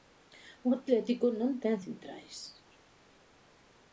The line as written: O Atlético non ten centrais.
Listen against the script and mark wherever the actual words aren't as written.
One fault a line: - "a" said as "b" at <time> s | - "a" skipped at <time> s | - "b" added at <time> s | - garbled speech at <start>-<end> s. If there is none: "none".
none